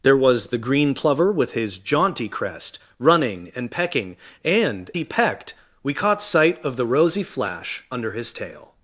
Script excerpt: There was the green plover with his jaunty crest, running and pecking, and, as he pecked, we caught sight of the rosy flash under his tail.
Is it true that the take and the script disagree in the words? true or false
true